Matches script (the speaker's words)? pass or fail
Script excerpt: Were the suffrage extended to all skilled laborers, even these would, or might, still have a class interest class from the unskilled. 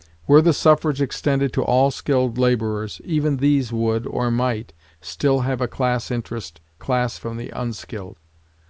pass